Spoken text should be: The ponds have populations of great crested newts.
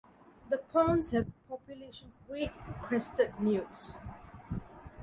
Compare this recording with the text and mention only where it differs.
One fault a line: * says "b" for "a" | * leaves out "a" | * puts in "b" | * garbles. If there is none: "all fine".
* leaves out "of"